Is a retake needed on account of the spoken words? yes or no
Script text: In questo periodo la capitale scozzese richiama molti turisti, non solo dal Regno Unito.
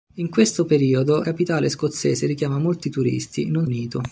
yes